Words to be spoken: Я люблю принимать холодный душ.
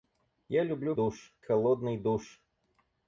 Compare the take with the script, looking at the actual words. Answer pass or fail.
fail